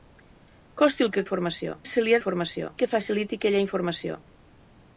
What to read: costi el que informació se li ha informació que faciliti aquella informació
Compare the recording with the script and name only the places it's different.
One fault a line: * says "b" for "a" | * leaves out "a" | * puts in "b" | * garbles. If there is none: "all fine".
all fine